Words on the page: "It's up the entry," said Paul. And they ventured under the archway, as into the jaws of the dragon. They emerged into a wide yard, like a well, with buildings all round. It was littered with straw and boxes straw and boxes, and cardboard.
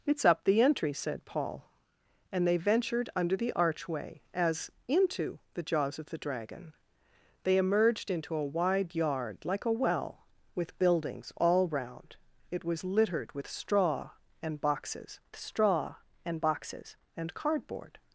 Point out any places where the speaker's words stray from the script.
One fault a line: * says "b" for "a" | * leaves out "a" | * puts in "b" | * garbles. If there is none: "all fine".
all fine